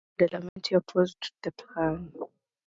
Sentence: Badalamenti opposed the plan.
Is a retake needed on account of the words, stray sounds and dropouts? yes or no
yes